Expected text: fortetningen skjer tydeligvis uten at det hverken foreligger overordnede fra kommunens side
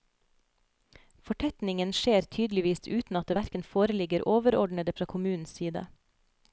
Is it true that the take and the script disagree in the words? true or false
false